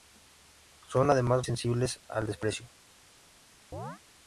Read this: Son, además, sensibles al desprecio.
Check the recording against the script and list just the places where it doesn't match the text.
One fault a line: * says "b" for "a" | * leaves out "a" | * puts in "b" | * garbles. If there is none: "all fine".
all fine